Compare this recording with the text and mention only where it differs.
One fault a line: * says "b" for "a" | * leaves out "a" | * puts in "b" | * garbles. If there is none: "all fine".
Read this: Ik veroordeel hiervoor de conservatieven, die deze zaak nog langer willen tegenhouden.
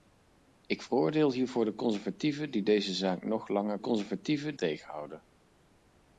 * says "conservatieven" for "willen"